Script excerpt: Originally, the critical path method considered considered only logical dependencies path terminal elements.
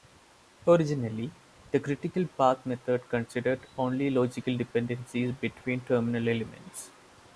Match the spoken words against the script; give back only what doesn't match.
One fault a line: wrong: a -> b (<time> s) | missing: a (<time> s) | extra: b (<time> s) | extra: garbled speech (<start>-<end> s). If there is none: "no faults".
missing: considered (3.7 s)
wrong: path -> between (5.3 s)